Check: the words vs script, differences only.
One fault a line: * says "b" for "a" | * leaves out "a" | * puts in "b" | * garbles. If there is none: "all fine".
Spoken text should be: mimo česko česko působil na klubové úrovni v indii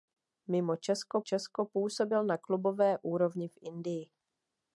all fine